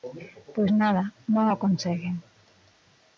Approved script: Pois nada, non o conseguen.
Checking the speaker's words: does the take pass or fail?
pass